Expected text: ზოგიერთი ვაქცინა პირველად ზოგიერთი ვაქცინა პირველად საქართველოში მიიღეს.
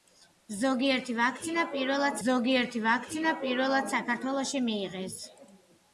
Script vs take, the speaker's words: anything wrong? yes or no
no